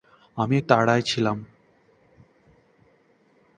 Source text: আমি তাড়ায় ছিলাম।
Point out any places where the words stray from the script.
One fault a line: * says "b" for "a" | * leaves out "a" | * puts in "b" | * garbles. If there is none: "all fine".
all fine